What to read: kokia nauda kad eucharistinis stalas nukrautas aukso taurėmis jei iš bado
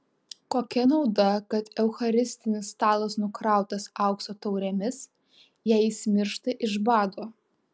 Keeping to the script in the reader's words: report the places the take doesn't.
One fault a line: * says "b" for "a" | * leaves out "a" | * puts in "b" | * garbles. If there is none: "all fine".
* puts in "jis miršta"